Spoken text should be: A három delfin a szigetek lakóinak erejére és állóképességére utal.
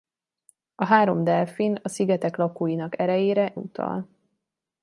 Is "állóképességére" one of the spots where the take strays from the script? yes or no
yes